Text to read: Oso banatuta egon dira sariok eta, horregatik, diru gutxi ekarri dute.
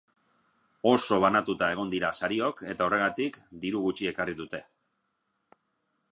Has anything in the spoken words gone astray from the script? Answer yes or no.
no